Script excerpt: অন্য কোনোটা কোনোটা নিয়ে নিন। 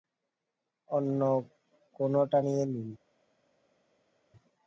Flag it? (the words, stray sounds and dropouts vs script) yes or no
yes